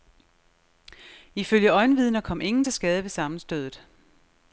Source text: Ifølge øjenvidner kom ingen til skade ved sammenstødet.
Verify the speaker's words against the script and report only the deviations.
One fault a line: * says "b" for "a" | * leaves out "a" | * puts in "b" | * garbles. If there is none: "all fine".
all fine